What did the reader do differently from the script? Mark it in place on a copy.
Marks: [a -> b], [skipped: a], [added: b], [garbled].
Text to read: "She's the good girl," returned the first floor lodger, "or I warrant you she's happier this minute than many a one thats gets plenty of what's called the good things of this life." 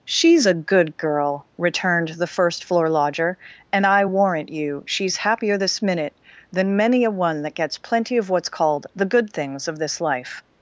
"She's [the -> a] good girl," returned the first floor lodger, ["or -> and] I warrant you she's happier this minute than many a one [thats -> that] gets plenty of what's called the good things of this life."